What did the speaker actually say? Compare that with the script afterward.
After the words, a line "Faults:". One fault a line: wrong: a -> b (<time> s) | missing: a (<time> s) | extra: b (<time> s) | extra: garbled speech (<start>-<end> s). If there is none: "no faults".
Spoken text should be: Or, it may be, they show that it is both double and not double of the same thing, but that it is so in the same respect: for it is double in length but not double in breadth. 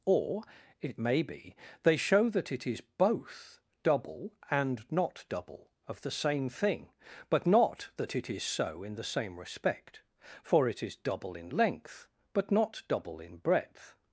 Or, it may be, they show that it is both double and not double of the same thing, but not that it is so in the same respect: for it is double in length but not double in breadth.
Faults:
extra: not (7.5 s)